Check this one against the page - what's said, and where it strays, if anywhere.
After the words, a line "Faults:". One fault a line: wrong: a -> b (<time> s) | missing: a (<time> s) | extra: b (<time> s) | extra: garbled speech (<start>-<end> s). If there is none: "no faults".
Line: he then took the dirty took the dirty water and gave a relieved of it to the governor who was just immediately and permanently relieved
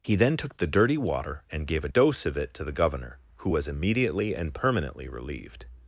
he then took the dirty water and gave a dose of it to the governor who was immediately and permanently relieved
Faults:
missing: took the dirty (1.0 s)
wrong: relieved -> dose (1.8 s)
missing: just (3.7 s)